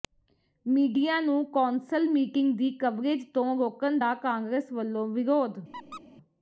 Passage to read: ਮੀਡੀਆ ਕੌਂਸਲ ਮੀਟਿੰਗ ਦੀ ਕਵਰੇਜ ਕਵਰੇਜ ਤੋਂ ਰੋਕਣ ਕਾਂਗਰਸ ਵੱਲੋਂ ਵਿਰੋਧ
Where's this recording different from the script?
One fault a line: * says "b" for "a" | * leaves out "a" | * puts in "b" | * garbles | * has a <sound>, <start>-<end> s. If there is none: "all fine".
* puts in "ਨੂੰ"
* leaves out "ਕਵਰੇਜ"
* puts in "ਦਾ"
* has a squeak, 5.7-6.0 s